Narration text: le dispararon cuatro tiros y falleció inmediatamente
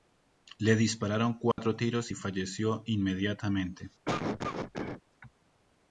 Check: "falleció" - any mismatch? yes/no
no